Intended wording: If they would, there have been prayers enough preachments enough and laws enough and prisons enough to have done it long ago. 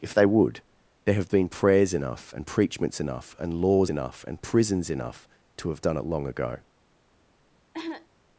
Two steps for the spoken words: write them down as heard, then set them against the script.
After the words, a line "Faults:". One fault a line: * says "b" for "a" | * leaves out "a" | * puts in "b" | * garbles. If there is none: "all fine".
If they would, there have been prayers enough and preachments enough and laws enough and prisons enough to have done it long ago.
Faults:
* puts in "and"